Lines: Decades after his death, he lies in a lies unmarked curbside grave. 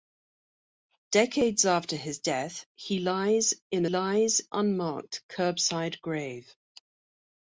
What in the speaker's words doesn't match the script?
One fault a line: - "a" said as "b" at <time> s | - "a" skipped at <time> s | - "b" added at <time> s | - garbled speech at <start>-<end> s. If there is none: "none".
none